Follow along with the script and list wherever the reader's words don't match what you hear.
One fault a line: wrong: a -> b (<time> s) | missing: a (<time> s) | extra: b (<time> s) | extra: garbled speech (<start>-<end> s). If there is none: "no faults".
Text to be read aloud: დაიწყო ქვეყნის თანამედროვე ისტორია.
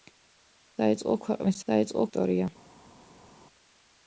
wrong: თანამედროვე -> დაიწყო (1.7 s)